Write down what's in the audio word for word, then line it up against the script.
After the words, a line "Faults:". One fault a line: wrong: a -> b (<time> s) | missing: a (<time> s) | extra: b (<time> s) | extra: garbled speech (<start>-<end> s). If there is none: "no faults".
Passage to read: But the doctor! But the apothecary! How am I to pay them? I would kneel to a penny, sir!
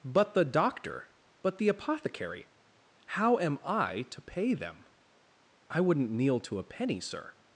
But the doctor! But the apothecary! How am I to pay them? I wouldn't kneel to a penny, sir!
Faults:
wrong: would -> wouldn't (5.8 s)